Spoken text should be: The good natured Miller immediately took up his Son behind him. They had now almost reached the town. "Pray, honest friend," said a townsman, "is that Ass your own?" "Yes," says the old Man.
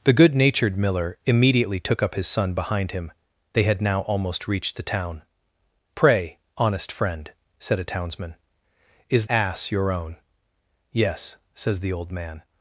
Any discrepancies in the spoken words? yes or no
yes